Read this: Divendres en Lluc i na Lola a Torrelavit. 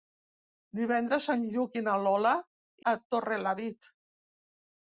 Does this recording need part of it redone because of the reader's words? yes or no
no